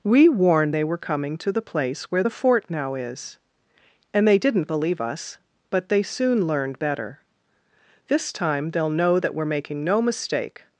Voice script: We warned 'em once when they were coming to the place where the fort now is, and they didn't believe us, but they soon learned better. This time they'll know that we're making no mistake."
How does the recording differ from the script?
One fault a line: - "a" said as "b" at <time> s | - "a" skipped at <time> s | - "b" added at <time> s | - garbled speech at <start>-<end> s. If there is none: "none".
- "em once when" skipped at 0.8 s